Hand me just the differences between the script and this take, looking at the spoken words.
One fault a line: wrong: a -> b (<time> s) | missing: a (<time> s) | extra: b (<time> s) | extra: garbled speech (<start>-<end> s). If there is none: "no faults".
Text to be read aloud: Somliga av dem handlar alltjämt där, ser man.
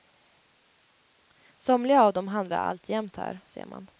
wrong: där -> här (3.1 s)